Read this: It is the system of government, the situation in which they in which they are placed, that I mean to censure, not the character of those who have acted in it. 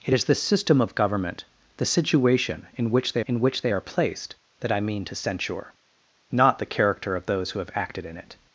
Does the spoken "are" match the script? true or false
true